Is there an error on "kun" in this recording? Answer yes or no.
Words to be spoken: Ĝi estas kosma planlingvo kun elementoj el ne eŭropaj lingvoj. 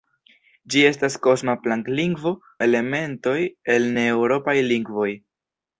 yes